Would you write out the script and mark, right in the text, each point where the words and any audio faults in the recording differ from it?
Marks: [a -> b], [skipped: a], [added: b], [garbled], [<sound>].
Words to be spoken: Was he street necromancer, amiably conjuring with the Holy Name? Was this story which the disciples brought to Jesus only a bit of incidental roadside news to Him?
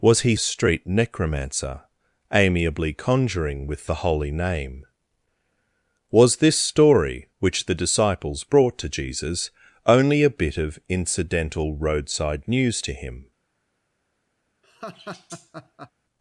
Was he street necromancer, amiably conjuring with the Holy Name? Was this story which the disciples brought to Jesus only a bit of incidental roadside news to Him? [laugh]